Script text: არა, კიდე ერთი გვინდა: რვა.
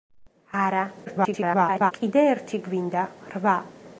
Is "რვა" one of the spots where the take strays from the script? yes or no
no